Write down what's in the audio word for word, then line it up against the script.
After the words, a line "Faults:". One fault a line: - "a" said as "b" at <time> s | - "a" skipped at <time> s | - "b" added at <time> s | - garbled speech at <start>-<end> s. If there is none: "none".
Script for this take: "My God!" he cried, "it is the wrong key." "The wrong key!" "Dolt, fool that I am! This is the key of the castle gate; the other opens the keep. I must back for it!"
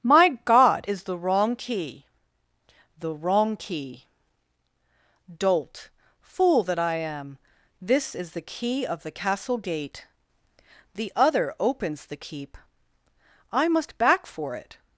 "My God!" is the wrong key." "The wrong key!" "Dolt, fool that I am! This is the key of the castle gate; the other opens the keep. I must back for it!"
Faults:
- "he cried it" skipped at 0.9 s